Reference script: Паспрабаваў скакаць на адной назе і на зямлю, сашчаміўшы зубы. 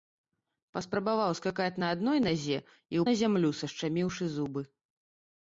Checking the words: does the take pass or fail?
pass